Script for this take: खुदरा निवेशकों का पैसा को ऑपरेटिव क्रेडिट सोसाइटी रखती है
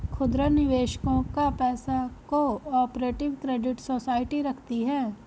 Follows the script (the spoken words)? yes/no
yes